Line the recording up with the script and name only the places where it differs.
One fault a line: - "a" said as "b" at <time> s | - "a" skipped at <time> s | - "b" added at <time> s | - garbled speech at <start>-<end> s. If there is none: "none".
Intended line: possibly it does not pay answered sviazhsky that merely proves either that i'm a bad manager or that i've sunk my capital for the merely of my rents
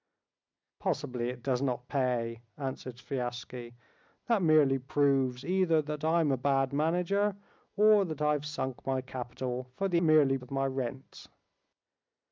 none